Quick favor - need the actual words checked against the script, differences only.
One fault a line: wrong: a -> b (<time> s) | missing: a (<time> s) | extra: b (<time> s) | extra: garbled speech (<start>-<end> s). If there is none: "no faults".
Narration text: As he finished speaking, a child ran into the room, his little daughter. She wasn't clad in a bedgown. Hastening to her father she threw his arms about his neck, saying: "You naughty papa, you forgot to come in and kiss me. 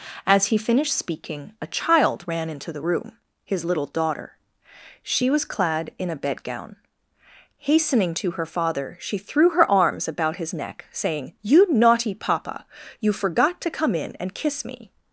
wrong: wasn't -> was (5.3 s)
wrong: his -> her (9.5 s)